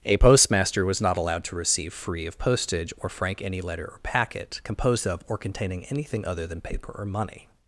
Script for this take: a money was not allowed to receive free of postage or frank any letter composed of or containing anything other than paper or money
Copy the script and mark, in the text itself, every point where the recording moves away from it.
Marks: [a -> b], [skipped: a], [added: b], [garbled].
a [money -> postmaster] was not allowed to receive free of postage or frank any letter [added: or packet] composed of or containing anything other than paper or money